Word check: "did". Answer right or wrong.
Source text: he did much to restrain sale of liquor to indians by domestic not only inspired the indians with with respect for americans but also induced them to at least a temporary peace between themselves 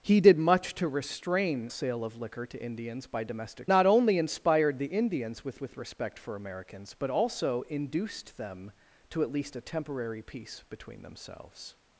right